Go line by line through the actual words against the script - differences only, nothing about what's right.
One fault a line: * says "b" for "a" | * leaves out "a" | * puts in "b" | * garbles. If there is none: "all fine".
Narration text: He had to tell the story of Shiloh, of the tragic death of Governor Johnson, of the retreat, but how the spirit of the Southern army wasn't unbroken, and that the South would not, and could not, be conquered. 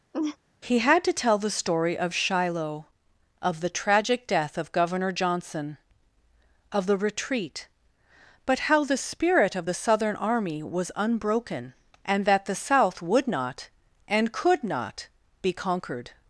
* says "was" for "wasn't"